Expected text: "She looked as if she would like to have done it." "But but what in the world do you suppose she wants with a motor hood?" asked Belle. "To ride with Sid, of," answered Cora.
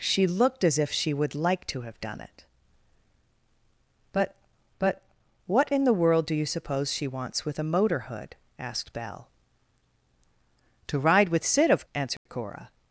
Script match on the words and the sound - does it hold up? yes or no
no